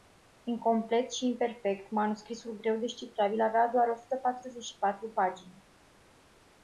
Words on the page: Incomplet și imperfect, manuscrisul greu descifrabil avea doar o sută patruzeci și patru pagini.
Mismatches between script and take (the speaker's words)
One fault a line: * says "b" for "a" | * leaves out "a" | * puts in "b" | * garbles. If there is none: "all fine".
all fine